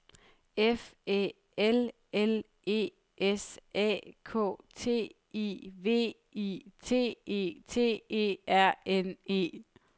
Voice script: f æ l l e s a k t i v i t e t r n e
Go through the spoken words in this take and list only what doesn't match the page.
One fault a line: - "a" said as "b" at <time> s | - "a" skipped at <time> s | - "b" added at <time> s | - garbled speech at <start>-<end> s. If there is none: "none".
- "e" added at 8.1 s